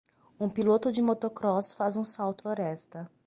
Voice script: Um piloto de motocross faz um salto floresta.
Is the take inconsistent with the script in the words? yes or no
no